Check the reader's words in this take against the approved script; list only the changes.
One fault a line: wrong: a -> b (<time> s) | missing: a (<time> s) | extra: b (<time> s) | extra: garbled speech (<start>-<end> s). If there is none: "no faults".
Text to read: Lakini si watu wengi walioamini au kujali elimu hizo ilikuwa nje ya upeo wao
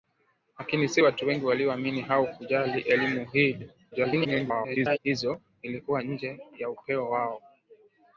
extra: garbled speech (3.9-5.0 s)